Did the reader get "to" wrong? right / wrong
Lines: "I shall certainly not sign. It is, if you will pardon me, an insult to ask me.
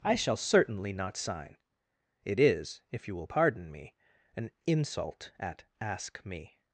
wrong